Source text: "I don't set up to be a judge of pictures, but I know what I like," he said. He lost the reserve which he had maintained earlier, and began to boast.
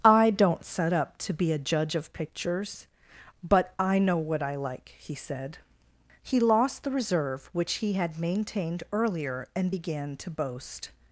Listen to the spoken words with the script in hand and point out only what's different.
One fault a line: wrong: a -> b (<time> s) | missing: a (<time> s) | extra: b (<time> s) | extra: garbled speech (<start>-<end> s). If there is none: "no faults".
no faults